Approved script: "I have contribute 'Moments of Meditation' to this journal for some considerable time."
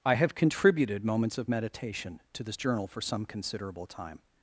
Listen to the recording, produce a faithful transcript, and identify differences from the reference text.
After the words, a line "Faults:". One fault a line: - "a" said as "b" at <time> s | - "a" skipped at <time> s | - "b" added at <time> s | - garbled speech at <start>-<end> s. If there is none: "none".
"I have contributed 'Moments of Meditation' to this journal for some considerable time."
Faults:
- "contribute" said as "contributed" at 0.3 s